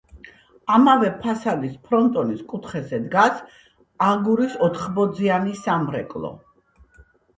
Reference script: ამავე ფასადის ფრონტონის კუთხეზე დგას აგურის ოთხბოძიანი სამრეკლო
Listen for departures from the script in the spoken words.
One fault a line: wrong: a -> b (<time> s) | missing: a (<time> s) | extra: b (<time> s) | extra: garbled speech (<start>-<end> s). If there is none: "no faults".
no faults